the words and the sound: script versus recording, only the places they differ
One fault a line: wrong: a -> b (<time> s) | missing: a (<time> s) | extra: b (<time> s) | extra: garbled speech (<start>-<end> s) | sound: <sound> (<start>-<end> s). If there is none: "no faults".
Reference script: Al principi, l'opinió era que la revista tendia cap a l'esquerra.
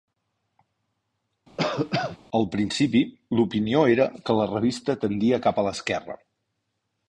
sound: cough (1.6-2.2 s)